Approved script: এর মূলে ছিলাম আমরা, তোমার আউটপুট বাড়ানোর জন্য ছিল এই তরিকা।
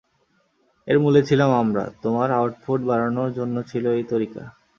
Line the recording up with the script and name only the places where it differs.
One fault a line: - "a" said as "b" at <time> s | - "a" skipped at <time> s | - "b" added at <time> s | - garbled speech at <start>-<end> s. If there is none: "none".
none